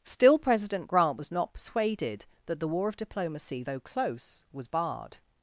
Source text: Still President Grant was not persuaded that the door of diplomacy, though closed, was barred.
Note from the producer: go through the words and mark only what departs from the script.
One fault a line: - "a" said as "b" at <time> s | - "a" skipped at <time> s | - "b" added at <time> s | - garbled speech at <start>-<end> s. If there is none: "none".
- "door" said as "war" at 2.7 s
- "closed" said as "close" at 3.8 s